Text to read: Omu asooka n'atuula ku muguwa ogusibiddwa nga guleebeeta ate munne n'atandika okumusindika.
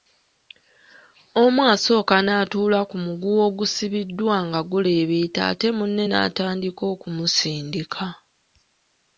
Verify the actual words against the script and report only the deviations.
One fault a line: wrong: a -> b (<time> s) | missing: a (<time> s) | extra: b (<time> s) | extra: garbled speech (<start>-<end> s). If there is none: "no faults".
no faults